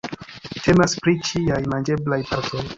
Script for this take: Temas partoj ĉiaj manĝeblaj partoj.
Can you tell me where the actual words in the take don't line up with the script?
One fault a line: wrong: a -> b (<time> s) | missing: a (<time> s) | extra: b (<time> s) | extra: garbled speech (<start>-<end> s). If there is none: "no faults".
wrong: partoj -> pri (1.0 s)